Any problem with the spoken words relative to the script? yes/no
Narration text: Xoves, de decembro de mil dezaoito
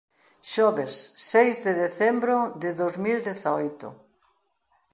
yes